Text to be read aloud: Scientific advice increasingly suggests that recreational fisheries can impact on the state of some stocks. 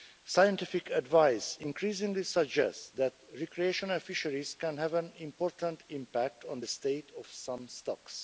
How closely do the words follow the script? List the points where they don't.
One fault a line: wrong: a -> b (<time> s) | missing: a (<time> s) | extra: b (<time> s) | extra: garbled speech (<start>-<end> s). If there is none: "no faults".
extra: have an important (4.8 s)